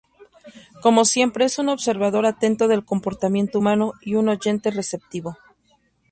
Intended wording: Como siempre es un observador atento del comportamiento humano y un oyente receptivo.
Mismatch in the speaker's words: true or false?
false